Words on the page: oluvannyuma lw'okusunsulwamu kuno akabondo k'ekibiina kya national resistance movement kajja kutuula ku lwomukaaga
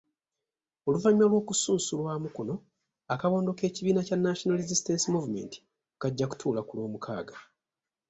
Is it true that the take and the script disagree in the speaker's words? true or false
false